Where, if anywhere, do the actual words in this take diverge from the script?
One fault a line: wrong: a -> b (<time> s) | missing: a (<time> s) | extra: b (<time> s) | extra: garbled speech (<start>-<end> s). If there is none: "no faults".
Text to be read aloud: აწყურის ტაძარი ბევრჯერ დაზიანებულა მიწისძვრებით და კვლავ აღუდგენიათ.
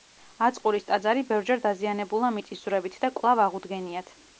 no faults